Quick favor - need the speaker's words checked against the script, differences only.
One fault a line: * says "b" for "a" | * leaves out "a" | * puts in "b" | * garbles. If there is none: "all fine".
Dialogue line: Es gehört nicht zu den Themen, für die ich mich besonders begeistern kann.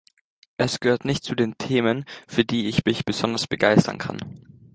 all fine